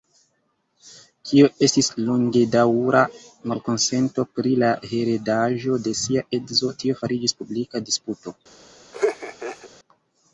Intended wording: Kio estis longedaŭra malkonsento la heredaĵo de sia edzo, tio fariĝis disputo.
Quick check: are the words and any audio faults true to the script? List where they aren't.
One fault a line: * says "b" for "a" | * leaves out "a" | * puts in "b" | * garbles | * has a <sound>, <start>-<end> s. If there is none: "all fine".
* puts in "pri"
* puts in "publika"
* has a laugh, 8.9-9.7 s